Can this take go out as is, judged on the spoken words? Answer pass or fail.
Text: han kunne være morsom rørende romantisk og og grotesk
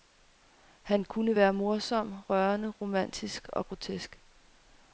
fail